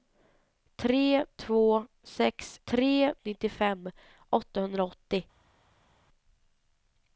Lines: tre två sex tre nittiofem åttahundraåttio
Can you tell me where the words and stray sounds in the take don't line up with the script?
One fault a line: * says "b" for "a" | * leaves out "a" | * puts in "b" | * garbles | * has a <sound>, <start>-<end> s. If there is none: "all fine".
all fine